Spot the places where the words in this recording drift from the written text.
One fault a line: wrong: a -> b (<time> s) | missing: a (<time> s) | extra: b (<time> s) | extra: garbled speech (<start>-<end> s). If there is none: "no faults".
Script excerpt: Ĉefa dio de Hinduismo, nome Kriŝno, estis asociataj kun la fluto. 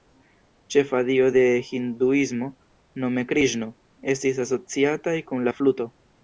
no faults